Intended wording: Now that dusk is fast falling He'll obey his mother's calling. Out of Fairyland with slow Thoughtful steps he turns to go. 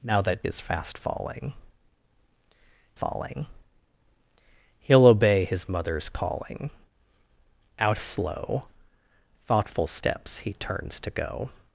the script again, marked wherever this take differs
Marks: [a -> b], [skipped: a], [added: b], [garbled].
Now that [skipped: dusk] is fast falling [added: falling] He'll obey his mother's calling. Out [skipped: of Fairyland with] slow Thoughtful steps he turns to go.